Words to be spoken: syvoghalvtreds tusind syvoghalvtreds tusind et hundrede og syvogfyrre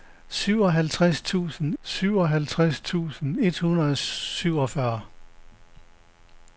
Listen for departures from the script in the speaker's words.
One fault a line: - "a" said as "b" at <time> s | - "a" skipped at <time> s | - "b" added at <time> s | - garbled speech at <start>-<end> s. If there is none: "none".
none